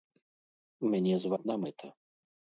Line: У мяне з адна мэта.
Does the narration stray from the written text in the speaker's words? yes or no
no